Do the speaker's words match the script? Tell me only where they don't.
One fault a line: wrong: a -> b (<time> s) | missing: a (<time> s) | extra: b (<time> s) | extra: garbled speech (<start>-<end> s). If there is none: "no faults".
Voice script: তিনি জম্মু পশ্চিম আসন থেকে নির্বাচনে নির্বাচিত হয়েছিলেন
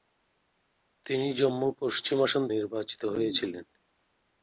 missing: থেকে নির্বাচনে (2.4 s)